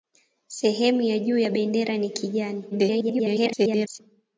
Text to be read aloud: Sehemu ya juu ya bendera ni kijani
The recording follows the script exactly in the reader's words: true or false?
false